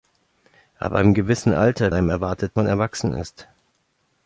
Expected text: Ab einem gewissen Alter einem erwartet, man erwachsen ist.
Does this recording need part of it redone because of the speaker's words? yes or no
no